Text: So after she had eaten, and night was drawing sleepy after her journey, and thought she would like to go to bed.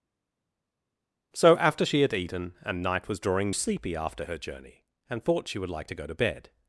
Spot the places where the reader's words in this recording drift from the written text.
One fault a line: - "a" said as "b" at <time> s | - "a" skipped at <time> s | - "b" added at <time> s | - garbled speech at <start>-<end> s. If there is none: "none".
none